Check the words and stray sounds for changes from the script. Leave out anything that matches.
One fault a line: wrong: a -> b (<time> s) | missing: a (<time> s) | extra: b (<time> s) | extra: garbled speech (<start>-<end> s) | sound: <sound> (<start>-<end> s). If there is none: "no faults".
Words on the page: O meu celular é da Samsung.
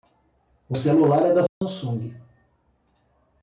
missing: meu (0.8 s)
sound: dropout (1.5-1.6 s)